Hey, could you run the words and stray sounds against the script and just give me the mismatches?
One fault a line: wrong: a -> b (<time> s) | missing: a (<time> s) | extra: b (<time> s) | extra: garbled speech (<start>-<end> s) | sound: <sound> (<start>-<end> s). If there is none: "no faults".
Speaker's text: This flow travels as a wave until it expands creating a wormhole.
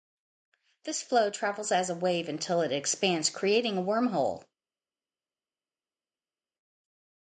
no faults